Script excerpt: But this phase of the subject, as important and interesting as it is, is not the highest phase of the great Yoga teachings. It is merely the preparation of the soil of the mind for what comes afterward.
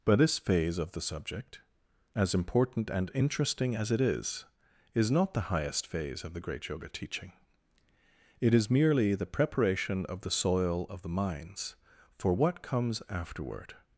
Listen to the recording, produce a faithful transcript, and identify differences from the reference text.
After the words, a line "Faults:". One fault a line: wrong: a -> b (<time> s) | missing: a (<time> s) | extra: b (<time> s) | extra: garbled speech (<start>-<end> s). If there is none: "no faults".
But this phase of the subject, as important and interesting as it is, is not the highest phase of the great Yoga teaching. It is merely the preparation of the soil of the minds for what comes afterward.
Faults:
wrong: teachings -> teaching (6.9 s)
wrong: mind -> minds (11.1 s)